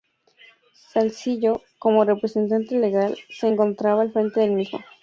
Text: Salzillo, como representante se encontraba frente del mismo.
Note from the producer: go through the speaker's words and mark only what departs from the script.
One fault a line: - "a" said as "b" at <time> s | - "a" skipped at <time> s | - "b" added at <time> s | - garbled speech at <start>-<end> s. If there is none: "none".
- "legal" added at 2.8 s
- "al" added at 4.0 s